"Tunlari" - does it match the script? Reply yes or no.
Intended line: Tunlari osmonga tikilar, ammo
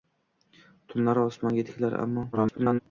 yes